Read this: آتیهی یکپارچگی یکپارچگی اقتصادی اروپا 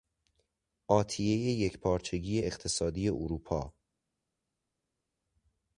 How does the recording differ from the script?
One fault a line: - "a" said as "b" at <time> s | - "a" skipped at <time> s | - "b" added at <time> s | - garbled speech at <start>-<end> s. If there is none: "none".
- "یکپارچگی" skipped at 2.4 s